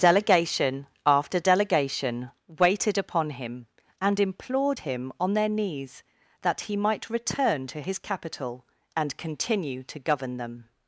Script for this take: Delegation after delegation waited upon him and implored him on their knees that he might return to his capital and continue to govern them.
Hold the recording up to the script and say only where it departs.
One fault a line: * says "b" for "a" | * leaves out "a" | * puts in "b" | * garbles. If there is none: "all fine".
all fine